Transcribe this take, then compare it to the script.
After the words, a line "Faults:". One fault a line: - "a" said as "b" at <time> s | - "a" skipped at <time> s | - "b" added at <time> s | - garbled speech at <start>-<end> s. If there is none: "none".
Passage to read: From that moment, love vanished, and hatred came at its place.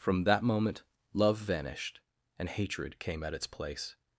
From that moment, love vanished, and hatred came at its place.
Faults:
none